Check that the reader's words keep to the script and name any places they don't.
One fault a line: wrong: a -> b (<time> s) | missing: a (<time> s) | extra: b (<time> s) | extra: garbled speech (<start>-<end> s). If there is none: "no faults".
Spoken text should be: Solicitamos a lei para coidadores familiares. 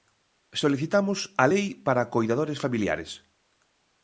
no faults